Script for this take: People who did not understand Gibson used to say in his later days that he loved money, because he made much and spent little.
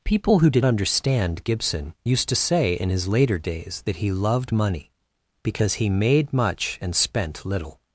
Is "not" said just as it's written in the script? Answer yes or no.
no